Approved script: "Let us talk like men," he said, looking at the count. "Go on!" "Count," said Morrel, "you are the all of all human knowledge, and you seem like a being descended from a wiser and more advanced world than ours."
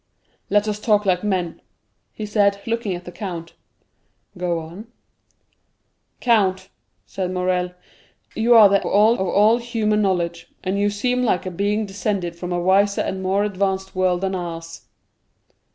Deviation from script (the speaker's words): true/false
false